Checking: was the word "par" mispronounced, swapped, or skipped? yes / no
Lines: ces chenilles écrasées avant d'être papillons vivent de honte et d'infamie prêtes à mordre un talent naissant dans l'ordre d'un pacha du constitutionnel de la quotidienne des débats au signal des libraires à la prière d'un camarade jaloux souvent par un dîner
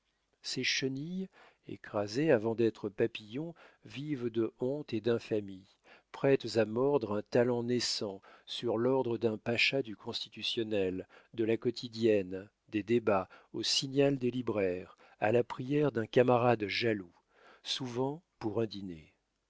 yes